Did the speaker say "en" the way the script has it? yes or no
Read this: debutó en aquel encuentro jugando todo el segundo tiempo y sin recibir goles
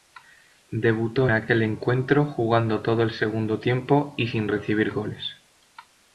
no